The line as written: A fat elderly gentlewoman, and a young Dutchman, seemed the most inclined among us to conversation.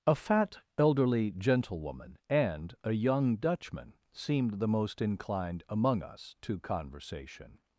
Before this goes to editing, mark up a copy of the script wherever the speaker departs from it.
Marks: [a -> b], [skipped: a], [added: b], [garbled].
A fat elderly gentlewoman, and a young Dutchman, seemed the most inclined among us to conversation.